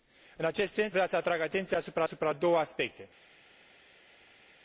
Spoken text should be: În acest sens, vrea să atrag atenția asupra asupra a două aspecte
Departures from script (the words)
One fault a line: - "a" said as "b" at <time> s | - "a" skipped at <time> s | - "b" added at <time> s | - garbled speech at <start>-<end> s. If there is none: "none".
none